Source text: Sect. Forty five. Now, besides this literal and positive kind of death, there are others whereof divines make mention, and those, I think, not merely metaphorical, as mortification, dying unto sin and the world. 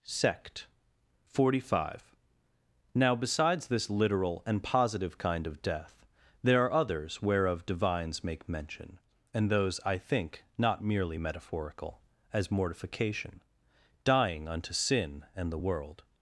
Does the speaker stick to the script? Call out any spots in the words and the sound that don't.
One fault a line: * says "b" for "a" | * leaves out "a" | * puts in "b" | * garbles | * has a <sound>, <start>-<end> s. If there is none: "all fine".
all fine